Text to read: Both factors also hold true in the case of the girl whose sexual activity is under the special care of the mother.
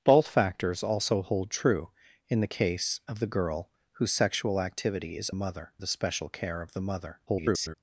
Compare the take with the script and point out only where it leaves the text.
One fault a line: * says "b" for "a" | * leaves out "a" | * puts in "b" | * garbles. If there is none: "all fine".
* says "mother" for "under"
* garbles